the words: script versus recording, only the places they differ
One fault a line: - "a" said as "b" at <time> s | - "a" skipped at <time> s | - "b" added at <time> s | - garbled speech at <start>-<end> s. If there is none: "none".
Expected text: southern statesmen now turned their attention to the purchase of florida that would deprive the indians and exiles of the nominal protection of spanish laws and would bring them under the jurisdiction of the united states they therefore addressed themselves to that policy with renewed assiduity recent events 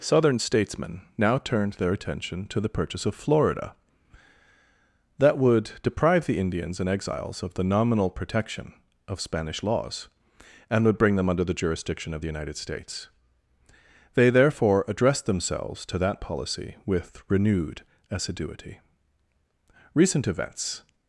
none